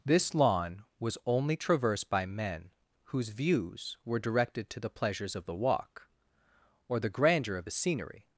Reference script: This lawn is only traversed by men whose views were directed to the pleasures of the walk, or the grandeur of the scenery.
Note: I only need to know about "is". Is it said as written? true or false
false